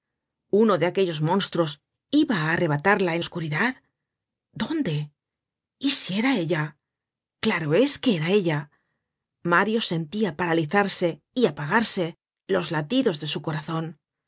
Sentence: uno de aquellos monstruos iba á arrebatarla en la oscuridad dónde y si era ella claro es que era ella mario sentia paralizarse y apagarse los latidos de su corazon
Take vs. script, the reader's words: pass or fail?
fail